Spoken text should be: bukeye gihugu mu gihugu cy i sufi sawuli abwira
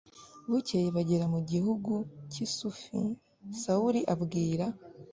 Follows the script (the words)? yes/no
no